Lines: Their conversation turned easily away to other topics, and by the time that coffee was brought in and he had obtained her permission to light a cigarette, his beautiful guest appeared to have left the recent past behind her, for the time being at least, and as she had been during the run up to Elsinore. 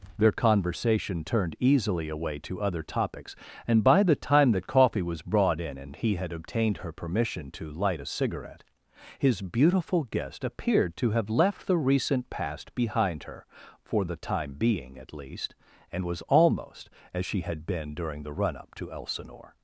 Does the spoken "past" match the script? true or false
true